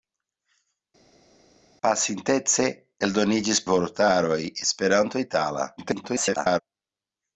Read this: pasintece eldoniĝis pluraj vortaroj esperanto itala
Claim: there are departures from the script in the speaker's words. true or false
true